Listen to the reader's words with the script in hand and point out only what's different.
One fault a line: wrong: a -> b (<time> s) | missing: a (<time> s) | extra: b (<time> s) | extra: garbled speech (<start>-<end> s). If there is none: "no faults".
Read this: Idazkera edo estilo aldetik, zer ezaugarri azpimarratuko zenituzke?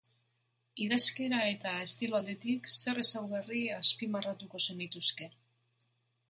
wrong: edo -> eta (1.5 s)